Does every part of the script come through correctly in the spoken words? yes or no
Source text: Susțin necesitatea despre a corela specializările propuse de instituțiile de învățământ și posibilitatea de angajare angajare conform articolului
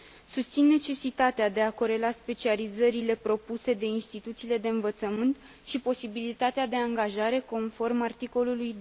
no